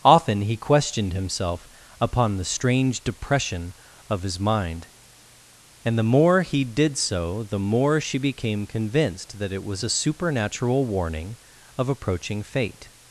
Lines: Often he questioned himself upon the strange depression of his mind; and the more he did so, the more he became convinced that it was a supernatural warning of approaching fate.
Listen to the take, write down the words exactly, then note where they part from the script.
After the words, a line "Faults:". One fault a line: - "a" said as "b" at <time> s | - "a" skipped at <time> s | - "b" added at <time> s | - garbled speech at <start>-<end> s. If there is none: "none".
Often he questioned himself upon the strange depression of his mind; and the more he did so, the more she became convinced that it was a supernatural warning of approaching fate.
Faults:
- "he" said as "she" at 8.0 s